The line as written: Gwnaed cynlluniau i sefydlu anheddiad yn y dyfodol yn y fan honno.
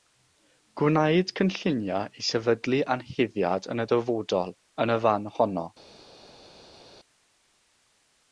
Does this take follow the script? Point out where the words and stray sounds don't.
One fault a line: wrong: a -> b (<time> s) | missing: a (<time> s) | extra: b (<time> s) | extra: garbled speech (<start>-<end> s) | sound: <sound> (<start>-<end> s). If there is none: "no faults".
no faults